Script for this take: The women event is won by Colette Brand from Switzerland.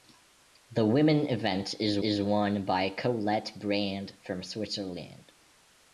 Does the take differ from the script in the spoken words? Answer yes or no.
yes